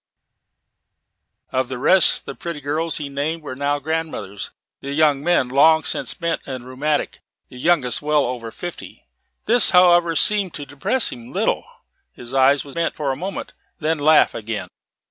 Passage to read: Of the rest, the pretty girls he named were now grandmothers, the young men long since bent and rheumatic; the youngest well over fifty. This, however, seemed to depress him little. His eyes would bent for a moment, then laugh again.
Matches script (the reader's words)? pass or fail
pass